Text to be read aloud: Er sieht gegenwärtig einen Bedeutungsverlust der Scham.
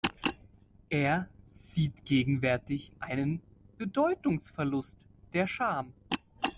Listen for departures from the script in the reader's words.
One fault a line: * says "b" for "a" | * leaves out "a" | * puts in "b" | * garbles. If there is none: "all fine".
all fine